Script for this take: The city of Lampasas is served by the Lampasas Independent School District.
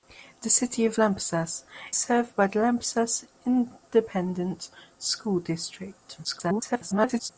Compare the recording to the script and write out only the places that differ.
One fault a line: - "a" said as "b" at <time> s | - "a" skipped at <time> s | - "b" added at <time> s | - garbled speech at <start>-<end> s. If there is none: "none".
- "is" skipped at 1.7 s
- garbled speech at 6.2-7.3 s